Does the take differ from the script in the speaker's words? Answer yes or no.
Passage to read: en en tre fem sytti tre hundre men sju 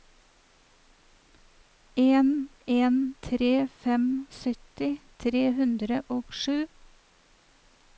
yes